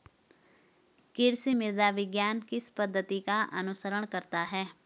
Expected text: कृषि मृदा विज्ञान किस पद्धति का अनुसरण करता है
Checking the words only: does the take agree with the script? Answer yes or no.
yes